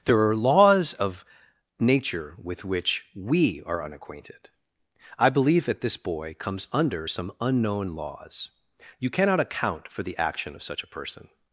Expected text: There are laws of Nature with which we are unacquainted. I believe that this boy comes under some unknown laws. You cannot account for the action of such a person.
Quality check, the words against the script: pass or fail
pass